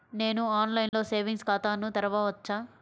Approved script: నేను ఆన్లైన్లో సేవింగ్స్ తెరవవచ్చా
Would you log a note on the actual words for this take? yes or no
yes